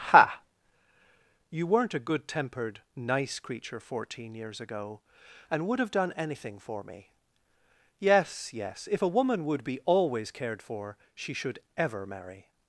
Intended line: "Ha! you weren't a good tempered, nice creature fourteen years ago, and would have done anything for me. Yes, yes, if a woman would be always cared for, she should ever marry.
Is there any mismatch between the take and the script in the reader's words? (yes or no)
no